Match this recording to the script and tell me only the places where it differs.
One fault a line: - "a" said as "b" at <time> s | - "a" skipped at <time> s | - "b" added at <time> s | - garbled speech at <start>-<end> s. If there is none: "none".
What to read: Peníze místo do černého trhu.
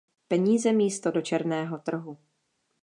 none